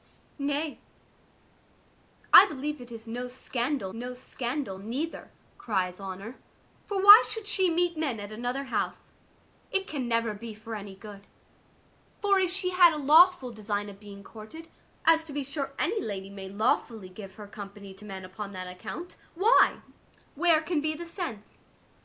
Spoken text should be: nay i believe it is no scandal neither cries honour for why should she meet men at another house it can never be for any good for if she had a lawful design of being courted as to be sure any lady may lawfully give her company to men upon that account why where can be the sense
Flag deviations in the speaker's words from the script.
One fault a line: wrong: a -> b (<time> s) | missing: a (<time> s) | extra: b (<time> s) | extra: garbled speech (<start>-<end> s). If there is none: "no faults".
extra: no scandal (3.9 s)